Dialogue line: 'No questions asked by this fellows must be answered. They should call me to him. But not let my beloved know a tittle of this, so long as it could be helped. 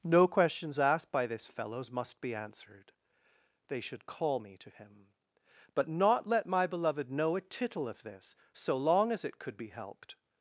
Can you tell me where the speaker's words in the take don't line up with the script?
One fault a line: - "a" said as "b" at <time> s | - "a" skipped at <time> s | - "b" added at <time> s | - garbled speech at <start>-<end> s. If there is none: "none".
none